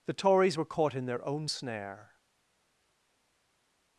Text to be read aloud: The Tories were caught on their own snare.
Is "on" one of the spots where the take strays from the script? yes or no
yes